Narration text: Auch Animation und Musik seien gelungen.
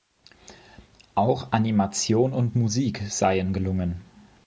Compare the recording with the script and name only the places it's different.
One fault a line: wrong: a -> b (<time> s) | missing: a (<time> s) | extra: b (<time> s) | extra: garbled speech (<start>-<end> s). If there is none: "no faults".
no faults